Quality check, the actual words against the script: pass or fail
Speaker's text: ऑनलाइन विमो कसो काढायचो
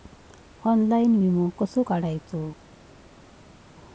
pass